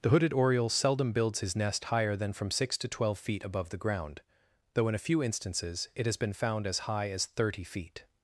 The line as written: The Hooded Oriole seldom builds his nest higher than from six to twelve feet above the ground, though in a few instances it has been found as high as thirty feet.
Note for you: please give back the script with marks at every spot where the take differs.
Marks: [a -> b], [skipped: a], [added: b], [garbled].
The Hooded Oriole seldom builds his nest higher than from six to twelve feet above the ground, though in a few instances it has been found as high as thirty feet.